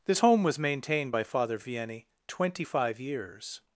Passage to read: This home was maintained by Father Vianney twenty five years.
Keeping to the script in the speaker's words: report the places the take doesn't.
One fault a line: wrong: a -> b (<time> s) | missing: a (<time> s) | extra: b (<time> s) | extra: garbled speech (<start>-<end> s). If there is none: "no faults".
no faults